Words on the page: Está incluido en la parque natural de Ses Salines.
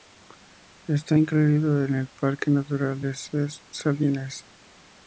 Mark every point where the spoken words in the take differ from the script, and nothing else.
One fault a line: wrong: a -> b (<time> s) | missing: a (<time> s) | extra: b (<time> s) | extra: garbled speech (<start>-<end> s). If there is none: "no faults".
wrong: la -> el (1.9 s)